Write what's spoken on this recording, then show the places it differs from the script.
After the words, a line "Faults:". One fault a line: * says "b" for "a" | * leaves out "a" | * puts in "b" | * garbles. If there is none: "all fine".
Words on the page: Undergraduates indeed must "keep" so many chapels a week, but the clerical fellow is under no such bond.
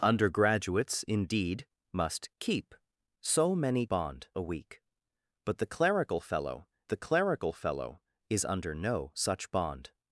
Undergraduates indeed must "keep" so many bond a week, but the clerical fellow the clerical fellow is under no such bond.
Faults:
* says "bond" for "chapels"
* puts in "the clerical fellow"